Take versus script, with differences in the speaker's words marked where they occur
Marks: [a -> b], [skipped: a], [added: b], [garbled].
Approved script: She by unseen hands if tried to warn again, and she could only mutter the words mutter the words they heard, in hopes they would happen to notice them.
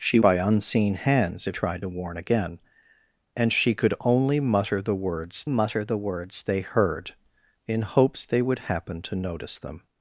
She by unseen hands if tried to warn again, and she could only mutter the words mutter the words they heard, in hopes they would happen to notice them.